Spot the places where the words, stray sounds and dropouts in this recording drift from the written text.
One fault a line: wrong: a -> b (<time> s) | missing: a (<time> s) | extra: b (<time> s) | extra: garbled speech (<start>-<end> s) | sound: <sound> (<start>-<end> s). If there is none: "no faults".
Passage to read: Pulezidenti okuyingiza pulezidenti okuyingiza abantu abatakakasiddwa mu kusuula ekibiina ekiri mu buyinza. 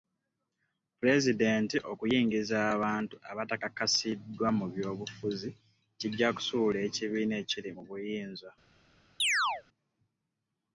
missing: pulezidenti okuyingiza (2.6 s)
extra: by'obufuzi kijja (4.7 s)
sound: chirp (9.2-9.6 s)